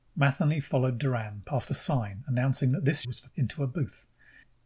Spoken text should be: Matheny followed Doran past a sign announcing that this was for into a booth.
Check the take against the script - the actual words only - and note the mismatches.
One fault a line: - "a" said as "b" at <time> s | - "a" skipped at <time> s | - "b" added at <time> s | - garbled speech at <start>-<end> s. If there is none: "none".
none